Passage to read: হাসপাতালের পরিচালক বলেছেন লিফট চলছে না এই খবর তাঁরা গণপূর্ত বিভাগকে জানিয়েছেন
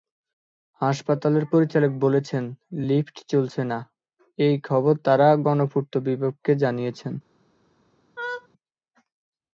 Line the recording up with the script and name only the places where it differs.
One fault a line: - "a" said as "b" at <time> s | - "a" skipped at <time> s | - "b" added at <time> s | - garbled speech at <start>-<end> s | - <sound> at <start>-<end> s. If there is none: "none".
- laugh at 8.2-8.5 s